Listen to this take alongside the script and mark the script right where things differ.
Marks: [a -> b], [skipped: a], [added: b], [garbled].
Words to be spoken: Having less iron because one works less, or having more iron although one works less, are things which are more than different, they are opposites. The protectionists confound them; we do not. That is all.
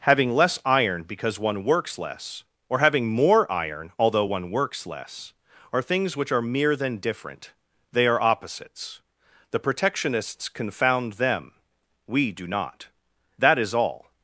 Having less iron because one works less, or having more iron although one works less, are things which are [more -> mere] than different, they are opposites. The protectionists confound them; we do not. That is all.